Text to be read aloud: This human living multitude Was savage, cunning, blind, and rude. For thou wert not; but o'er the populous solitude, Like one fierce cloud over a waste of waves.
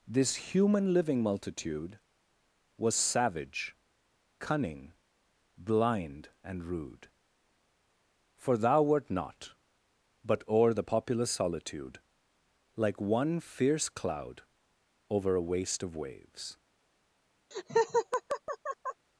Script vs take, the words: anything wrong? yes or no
no